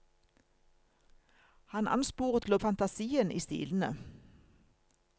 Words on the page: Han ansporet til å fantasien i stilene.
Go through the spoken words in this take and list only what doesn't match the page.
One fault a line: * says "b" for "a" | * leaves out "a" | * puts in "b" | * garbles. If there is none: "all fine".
all fine